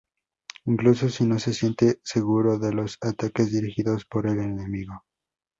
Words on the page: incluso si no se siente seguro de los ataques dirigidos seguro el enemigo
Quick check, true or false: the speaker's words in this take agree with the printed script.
false